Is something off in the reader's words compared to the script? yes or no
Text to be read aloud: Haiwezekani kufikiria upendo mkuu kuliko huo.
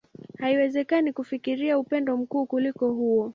no